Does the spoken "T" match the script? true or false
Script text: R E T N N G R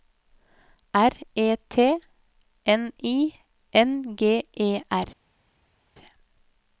true